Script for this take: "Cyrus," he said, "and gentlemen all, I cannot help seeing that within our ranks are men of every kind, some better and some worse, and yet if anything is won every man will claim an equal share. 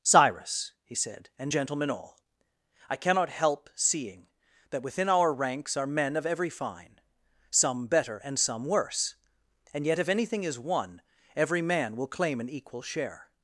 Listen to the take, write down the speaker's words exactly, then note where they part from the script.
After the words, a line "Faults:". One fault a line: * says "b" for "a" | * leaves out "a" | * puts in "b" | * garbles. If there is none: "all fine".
"Cyrus," he said, "and gentlemen all, I cannot help seeing that within our ranks are men of every fine, some better and some worse, and yet if anything is won every man will claim an equal share.
Faults:
* says "fine" for "kind"